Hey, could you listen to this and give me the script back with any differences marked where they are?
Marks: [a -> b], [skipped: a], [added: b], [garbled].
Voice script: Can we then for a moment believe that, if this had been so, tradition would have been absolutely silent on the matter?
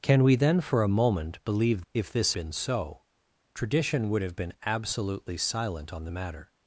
Can we then for a moment believe [skipped: that,] if this [skipped: had] been so, tradition would have been absolutely silent on the matter?